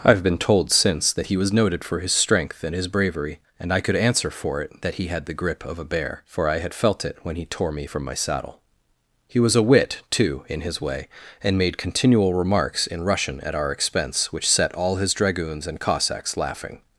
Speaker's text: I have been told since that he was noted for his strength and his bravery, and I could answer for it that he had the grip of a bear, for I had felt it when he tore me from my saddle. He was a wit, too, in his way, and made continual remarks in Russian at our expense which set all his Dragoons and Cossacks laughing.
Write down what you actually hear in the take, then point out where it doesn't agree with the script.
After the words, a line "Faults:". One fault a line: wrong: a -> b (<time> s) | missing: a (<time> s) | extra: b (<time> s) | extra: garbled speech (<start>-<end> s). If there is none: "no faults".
I have been told since that he was noted for his strength and his bravery, and I could answer for it that he had the grip of a bear, for I had felt it when he tore me from my saddle. He was a wit, too, in his way, and made continual remarks in Russian at our expense which set all his Dragoons and Cossacks laughing.
Faults:
no faults